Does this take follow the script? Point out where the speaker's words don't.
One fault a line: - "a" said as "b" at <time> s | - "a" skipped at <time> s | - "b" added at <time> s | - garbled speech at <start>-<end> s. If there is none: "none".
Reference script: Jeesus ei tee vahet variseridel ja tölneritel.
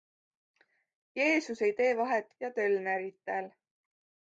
- "variseridel" skipped at 2.2 s